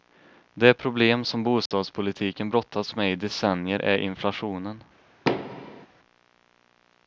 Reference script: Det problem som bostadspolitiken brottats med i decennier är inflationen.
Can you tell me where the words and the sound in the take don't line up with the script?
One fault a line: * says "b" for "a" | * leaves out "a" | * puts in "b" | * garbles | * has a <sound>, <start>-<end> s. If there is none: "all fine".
* has a dropout, 1.7-1.7 s
* has a thud, 5.3-5.9 s